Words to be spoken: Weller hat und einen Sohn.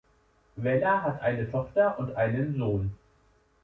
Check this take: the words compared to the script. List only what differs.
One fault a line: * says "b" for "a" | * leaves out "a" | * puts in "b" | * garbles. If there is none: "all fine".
* puts in "eine Tochter"